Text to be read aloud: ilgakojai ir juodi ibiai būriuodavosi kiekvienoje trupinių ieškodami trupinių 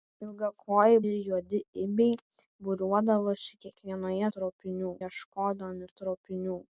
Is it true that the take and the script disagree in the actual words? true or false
false